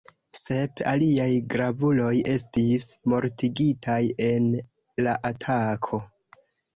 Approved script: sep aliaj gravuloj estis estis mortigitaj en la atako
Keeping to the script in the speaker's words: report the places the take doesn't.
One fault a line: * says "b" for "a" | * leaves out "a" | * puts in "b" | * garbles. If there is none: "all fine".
* leaves out "estis"